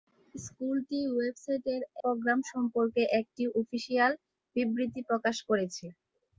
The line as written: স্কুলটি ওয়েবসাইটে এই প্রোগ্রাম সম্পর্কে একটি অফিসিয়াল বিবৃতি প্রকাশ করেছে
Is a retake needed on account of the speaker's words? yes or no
yes